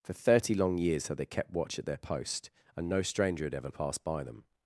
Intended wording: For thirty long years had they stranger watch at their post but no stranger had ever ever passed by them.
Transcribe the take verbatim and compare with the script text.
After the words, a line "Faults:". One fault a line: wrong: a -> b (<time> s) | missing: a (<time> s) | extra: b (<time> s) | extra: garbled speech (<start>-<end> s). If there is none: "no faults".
For thirty long years had they kept watch at their post and no stranger had ever passed by them.
Faults:
wrong: stranger -> kept (1.2 s)
wrong: but -> and (2.8 s)
missing: ever (3.7 s)